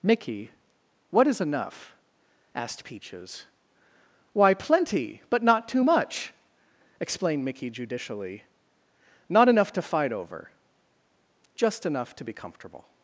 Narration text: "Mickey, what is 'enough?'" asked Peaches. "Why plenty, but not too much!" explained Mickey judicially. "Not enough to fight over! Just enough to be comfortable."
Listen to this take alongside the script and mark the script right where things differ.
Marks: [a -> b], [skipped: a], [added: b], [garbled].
"Mickey, what is 'enough?'" asked Peaches. "Why plenty, but not too much!" explained Mickey judicially. "Not enough to fight over! Just enough to be comfortable."